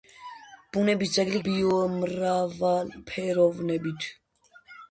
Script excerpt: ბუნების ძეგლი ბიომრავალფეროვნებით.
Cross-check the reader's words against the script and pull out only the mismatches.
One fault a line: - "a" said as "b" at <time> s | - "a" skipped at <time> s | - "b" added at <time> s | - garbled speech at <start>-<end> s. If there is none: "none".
none